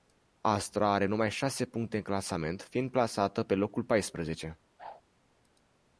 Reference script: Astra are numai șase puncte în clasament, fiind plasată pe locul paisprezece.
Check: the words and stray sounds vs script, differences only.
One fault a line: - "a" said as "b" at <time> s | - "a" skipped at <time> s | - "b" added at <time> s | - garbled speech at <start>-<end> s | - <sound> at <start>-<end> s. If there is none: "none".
- whoosh at 4.8-5.0 s